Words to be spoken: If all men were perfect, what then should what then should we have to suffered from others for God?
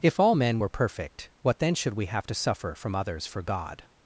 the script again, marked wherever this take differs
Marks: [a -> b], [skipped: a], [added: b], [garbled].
If all men were perfect, what then should [skipped: what then should] we have to [suffered -> suffer] from others for God?